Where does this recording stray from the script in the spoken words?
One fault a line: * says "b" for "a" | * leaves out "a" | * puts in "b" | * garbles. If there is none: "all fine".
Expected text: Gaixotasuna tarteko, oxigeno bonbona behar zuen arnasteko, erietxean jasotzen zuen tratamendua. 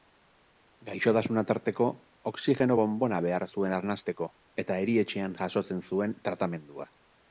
* puts in "eta"